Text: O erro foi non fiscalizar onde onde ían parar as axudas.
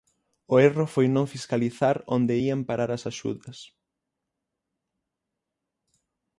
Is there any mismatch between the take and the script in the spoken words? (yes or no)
yes